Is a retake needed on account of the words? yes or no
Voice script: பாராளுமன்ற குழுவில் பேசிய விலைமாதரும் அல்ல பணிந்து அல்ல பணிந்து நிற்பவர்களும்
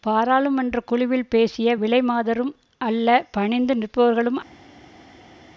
yes